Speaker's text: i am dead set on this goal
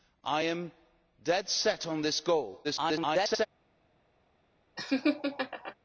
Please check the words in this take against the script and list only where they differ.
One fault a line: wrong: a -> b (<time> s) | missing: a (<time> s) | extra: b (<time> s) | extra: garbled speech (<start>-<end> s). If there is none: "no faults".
extra: garbled speech (2.6-3.5 s)